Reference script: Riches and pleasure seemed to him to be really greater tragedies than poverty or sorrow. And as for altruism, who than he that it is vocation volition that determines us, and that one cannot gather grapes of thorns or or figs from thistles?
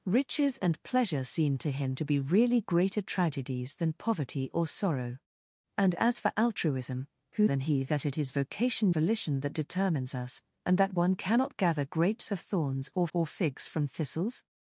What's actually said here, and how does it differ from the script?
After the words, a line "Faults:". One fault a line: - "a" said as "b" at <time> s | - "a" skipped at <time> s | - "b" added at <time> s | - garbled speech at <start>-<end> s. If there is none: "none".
Riches and pleasure seemed to him to be really greater tragedies than poverty or sorrow. And as for altruism, who than he that it is vocation volition that determines us, and that one cannot gather grapes of thorns or or figs from thistles?
Faults:
none